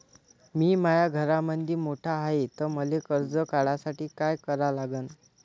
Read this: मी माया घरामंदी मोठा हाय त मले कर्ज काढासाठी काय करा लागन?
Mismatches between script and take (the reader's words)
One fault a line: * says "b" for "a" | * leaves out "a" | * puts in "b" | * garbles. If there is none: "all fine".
all fine